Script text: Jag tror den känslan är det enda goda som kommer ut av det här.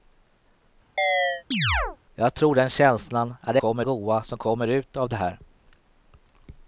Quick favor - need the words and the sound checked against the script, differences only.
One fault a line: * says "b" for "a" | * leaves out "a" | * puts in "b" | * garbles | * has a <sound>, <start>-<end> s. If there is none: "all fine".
* has a chirp, 1.0-2.0 s
* says "kommer" for "enda"